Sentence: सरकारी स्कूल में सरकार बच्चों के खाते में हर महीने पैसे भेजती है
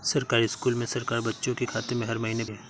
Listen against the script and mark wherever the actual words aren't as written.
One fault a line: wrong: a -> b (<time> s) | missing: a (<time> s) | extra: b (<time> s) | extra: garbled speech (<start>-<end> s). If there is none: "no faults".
missing: पैसे भेजती (2.4 s)